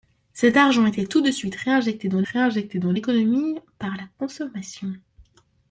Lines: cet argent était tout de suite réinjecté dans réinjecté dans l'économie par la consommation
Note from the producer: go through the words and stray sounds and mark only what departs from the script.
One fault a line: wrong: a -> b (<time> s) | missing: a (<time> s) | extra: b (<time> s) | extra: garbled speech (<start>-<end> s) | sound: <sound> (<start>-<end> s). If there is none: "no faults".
no faults